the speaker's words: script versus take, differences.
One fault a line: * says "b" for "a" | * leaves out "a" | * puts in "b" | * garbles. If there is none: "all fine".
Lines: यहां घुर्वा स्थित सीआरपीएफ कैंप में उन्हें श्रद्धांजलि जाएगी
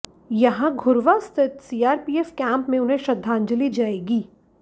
all fine